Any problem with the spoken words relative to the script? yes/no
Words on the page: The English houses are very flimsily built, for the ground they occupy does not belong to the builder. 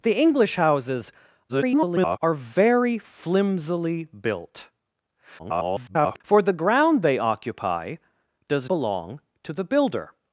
yes